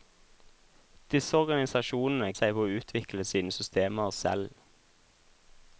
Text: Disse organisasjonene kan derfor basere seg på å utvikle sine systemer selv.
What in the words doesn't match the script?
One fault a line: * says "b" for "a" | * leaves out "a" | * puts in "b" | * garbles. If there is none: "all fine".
* leaves out "kan derfor basere"